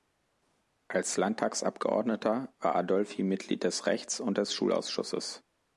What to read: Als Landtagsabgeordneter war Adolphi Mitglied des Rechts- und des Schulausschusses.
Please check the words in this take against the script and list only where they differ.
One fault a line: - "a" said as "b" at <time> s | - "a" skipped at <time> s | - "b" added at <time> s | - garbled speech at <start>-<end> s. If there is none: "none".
none